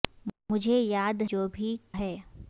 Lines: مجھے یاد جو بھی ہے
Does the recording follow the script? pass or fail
pass